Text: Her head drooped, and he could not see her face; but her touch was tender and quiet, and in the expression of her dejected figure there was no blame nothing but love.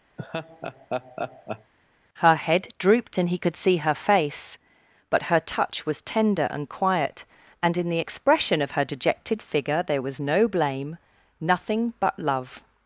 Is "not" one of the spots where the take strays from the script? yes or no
yes